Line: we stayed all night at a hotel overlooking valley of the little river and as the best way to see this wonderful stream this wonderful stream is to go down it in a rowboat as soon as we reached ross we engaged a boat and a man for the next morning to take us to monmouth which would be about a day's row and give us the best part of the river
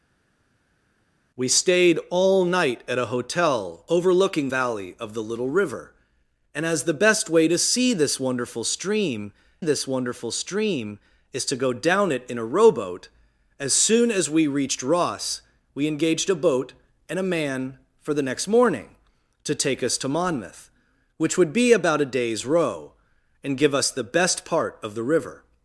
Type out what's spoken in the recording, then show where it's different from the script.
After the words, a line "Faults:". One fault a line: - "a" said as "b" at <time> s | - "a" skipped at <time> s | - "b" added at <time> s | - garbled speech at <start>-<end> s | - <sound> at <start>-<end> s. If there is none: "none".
we stayed all night at a hotel overlooking valley of the little river and as the best way to see this wonderful stream this wonderful stream is to go down it in a rowboat as soon as we reached ross we engaged a boat and a man for the next morning to take us to monmouth which would be about a day's row and give us the best part of the river
Faults:
none